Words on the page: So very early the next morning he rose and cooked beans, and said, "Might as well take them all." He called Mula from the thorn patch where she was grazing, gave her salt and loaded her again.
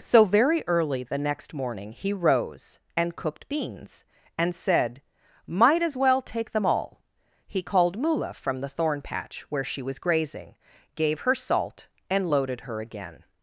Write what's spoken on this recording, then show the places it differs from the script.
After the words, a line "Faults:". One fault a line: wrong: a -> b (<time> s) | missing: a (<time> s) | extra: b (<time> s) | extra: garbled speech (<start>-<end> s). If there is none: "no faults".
So very early the next morning he rose and cooked beans, and said, "Might as well take them all." He called Mula from the thorn patch where she was grazing, gave her salt and loaded her again.
Faults:
no faults